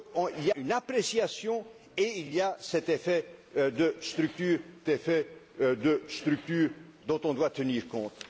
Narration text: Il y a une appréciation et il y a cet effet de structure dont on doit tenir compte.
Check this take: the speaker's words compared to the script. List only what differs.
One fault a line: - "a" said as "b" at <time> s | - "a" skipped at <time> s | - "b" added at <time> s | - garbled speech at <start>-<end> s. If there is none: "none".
- "a" skipped at 0.5 s
- "il" added at 2.2 s
- "effet de structure" added at 4.9 s